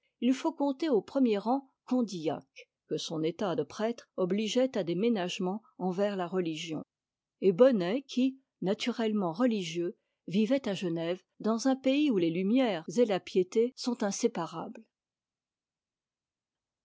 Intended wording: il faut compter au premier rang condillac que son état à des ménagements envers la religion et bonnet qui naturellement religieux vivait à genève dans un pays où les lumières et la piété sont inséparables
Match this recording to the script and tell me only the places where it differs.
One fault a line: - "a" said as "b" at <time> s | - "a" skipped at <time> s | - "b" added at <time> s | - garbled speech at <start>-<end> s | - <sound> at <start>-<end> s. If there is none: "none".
- "de prêtre obligeait" added at 3.5 s